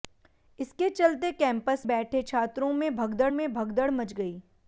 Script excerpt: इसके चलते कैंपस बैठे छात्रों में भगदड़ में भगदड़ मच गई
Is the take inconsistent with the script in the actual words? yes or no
no